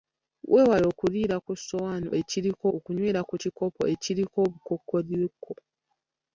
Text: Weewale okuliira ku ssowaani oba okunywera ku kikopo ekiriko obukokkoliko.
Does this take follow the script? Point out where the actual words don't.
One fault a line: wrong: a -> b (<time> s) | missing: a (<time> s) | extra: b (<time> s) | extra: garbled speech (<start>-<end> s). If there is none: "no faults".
wrong: oba -> ekiriko (2.2 s)